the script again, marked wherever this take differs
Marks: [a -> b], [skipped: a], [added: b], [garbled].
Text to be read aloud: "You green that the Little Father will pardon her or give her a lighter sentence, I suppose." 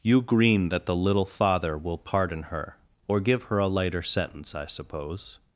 "You green that the Little Father will pardon her or give her a lighter sentence, I suppose."